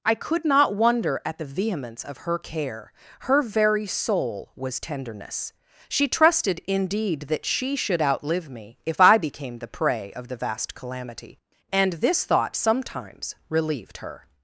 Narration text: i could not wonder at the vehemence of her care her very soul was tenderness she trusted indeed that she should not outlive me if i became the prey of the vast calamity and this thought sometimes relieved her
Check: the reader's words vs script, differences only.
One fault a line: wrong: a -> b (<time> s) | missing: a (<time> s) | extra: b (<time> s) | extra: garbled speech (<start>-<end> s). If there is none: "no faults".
missing: not (8.0 s)